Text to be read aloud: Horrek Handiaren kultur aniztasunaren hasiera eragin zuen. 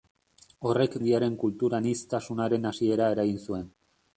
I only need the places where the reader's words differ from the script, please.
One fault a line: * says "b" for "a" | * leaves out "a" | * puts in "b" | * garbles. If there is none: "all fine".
all fine